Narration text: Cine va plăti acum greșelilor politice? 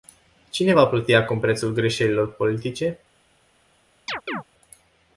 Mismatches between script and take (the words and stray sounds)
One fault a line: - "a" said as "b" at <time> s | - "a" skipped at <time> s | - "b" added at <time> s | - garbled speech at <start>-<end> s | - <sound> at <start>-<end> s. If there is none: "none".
- "prețul" added at 1.4 s
- chirp at 4.1-4.4 s